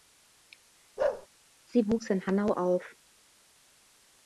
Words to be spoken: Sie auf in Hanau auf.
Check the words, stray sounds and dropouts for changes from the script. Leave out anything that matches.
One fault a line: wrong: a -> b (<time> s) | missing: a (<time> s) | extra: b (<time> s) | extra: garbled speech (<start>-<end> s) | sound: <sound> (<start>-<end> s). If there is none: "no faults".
sound: bark (1.0-1.3 s)
wrong: auf -> wuchs (1.9 s)